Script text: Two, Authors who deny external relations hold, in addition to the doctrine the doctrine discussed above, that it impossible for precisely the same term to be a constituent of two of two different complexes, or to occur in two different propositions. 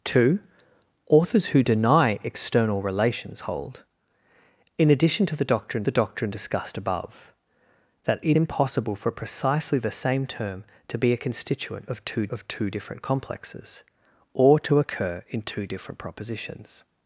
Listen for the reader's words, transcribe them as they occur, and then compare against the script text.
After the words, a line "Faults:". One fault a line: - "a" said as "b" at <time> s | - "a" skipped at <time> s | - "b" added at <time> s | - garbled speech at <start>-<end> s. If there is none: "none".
Two, Authors who deny external relations hold, in addition to the doctrine the doctrine discussed above, that it impossible for precisely the same term to be a constituent of two of two different complexes, or to occur in two different propositions.
Faults:
none